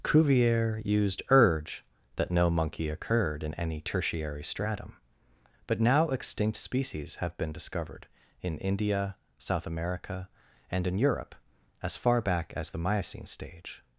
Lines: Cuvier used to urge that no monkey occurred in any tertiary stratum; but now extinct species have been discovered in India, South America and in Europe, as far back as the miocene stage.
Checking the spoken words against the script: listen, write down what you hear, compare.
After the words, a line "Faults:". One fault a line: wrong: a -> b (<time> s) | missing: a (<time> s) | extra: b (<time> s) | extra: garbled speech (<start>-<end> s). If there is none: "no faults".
Cuvier used urge that no monkey occurred in any tertiary stratum; but now extinct species have been discovered in India, South America and in Europe, as far back as the miocene stage.
Faults:
missing: to (1.2 s)